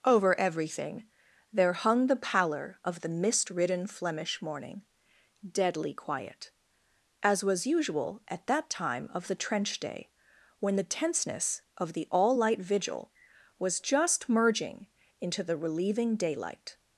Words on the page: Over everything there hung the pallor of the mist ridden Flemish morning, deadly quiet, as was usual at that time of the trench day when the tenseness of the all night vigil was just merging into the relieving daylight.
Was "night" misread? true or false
true